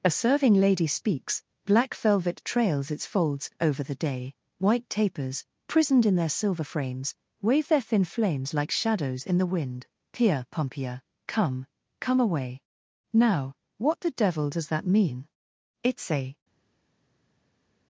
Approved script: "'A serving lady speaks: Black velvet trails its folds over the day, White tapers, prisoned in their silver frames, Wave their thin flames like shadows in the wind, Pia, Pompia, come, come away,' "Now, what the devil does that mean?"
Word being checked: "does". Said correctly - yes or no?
yes